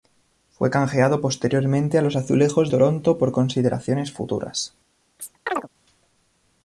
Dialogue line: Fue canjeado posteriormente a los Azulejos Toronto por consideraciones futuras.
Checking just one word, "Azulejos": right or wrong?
right